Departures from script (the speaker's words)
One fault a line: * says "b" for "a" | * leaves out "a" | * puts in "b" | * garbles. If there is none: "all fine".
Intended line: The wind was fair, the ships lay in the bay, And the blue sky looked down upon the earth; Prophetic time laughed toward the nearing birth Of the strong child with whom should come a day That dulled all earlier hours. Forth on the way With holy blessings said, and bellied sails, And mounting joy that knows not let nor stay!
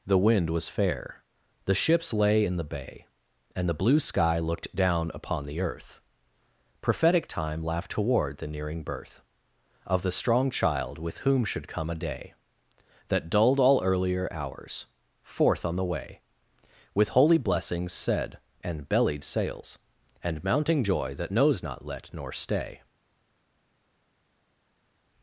all fine